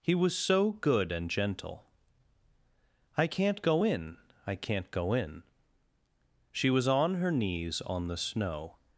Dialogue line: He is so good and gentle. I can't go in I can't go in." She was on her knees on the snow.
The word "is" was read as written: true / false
false